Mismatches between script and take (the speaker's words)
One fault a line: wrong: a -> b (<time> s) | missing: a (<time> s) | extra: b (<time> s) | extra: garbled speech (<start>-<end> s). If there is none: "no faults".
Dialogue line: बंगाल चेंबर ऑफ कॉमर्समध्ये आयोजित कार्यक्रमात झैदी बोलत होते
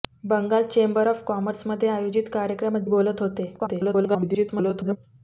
missing: झैदी (2.9 s)
extra: garbled speech (3.6-5.0 s)